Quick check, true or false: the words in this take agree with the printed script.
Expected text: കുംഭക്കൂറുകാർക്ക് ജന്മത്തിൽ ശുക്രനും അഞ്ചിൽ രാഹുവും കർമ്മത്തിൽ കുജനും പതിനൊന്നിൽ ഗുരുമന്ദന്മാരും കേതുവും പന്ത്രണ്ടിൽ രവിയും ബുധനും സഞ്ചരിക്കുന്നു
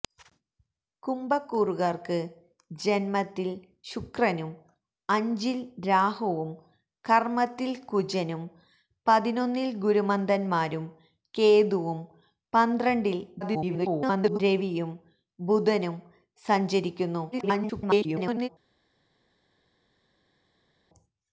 false